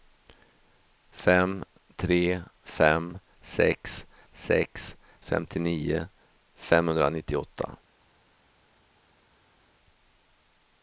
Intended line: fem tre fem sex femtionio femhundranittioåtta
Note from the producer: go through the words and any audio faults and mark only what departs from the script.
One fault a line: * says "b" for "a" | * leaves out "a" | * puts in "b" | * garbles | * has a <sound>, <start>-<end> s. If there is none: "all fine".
* puts in "sex"